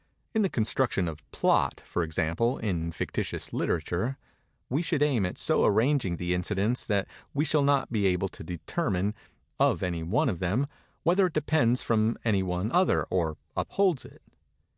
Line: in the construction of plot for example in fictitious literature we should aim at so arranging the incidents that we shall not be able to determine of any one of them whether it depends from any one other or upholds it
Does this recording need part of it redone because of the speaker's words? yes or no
no